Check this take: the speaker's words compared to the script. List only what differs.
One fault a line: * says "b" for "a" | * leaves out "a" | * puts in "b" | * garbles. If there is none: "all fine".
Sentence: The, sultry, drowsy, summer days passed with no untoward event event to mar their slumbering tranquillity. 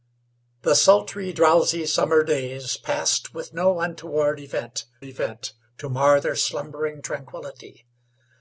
all fine